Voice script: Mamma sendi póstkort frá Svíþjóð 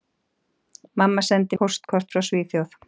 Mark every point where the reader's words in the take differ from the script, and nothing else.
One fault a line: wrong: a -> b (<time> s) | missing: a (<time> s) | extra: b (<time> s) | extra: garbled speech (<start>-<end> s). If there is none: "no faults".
no faults